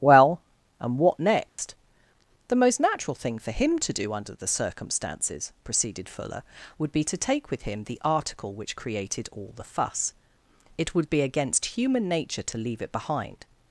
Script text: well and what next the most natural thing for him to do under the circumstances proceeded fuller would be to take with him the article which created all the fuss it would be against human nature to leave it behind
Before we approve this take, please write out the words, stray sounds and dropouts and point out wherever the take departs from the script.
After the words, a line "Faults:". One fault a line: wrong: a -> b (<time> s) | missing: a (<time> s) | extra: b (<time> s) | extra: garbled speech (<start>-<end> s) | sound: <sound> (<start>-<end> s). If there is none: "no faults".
well and what next the most natural thing for him to do under the circumstances proceeded fuller would be to take with him the article which created all the fuss it would be against human nature to leave it behind
Faults:
sound: dropout (1.5-1.6 s)